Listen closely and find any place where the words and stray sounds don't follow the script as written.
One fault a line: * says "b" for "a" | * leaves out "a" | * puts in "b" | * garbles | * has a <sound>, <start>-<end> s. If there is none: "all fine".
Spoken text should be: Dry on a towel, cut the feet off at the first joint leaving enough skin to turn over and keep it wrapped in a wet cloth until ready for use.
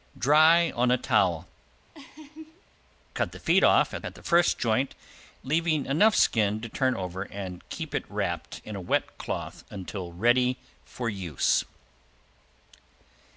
* has a laugh, 1.9-2.6 s
* puts in "at"